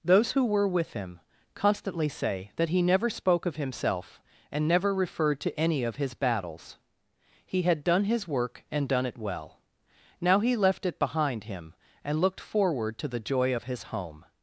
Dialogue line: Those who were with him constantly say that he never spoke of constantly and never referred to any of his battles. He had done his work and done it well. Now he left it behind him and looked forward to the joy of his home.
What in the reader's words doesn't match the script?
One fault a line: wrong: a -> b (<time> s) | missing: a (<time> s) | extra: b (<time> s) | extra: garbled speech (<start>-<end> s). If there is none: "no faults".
wrong: constantly -> himself (3.6 s)